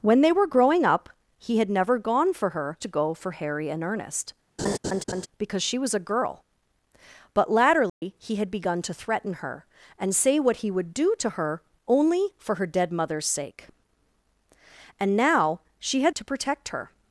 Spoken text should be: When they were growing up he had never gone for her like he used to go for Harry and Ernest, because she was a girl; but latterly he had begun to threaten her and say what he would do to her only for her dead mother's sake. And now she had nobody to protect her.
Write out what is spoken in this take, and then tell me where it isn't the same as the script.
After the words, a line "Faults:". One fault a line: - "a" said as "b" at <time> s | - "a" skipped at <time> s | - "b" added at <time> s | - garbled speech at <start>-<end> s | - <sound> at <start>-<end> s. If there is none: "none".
When they were growing up he had never gone for her to go for Harry and Ernest, because she was a girl; but latterly he had begun to threaten her and say what he would do to her only for her dead mother's sake. And now she had to protect her.
Faults:
- "like he used" skipped at 2.8 s
- laugh at 4.6-5.3 s
- dropout at 7.9-8.0 s
- "nobody" skipped at 16.1 s